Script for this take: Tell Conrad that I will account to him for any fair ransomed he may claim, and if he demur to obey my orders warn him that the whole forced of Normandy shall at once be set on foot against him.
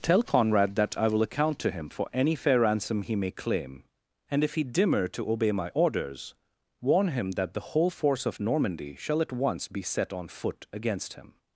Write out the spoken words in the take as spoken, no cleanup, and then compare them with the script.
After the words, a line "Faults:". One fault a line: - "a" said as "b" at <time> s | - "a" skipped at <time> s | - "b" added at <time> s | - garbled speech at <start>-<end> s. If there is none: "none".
Tell Conrad that I will account to him for any fair ransom he may claim, and if he demur to obey my orders warn him that the whole force of Normandy shall at once be set on foot against him.
Faults:
- "ransomed" said as "ransom" at 2.6 s
- "forced" said as "force" at 7.9 s